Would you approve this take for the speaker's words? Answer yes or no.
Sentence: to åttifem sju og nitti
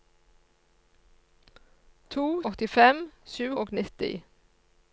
yes